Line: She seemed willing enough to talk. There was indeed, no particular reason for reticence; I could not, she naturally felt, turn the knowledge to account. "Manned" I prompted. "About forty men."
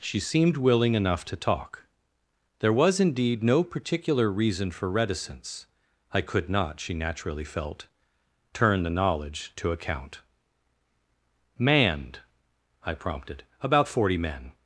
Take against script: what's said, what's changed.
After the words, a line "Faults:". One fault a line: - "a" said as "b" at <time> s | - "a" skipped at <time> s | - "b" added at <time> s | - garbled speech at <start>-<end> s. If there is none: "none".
She seemed willing enough to talk. There was indeed, no particular reason for reticence; I could not, she naturally felt, turn the knowledge to account. "Manned" I prompted. "About forty men."
Faults:
none